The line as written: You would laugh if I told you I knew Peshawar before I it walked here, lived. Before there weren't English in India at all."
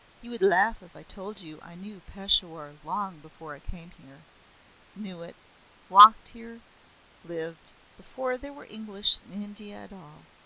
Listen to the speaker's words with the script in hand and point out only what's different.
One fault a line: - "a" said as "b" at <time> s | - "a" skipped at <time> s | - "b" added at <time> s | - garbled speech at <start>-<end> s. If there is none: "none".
- "long" added at 2.8 s
- "came here Knew" added at 3.6 s
- "weren't" said as "were" at 8.5 s